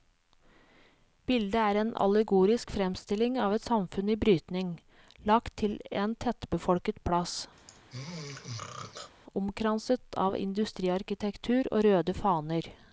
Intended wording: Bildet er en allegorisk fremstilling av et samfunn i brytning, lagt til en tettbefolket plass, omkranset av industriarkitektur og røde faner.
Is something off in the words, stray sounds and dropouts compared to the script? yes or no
yes